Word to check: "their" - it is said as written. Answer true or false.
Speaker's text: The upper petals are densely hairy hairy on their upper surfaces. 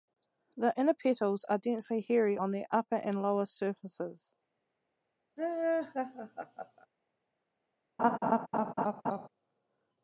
true